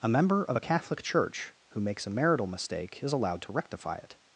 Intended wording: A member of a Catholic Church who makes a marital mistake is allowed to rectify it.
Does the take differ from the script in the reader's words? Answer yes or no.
no